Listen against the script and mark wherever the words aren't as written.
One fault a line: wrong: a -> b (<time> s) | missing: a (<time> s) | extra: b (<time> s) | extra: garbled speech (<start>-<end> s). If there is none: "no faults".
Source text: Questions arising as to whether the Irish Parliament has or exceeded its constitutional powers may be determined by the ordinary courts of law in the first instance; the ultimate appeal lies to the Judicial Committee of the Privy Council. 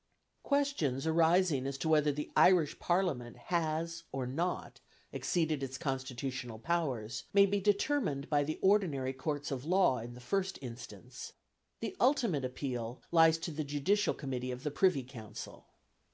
extra: not (4.2 s)